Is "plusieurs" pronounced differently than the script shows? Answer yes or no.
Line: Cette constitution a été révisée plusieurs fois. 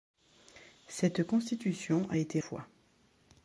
yes